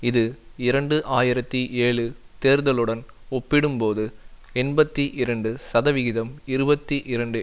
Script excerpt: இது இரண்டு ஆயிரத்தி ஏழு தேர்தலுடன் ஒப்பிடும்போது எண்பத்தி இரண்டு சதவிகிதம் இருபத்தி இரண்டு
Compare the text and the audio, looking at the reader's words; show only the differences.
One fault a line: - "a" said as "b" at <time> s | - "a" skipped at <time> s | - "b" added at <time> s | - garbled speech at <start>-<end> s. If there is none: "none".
none